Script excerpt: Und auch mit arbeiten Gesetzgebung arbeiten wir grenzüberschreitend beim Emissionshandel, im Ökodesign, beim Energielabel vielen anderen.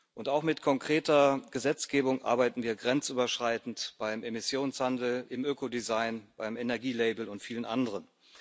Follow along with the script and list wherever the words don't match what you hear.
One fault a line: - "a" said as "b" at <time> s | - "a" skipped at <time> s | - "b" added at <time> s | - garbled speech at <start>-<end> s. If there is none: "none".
- "arbeiten" said as "konkreter" at 0.6 s
- "und" added at 7.3 s